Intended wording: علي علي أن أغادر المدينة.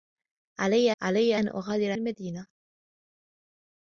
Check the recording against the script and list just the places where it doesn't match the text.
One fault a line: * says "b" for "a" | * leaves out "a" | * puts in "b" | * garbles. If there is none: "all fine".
all fine